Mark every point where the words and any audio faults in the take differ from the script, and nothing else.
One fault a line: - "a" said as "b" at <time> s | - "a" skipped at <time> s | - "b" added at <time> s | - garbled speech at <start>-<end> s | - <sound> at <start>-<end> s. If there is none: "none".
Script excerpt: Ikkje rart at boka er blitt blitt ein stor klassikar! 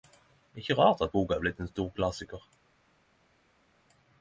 - "blitt" skipped at 1.6 s